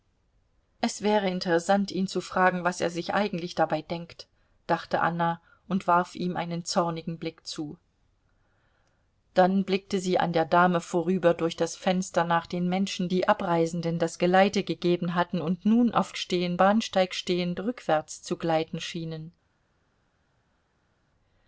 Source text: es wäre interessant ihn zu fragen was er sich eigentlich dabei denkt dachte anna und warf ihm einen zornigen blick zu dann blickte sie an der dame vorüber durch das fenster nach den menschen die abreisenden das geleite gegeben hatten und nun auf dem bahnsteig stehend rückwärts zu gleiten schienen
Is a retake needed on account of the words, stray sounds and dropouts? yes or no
yes